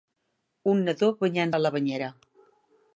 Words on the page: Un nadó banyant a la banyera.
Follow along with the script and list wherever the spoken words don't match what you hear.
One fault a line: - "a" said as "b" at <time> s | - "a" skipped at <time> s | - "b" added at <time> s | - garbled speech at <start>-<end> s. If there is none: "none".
none